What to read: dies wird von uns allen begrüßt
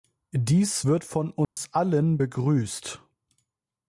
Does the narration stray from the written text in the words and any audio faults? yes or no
yes